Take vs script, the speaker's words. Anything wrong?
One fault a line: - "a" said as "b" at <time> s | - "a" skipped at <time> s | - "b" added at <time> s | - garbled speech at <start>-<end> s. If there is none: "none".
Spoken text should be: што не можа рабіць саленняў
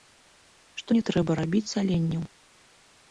- "можа" said as "трэба" at 1.1 s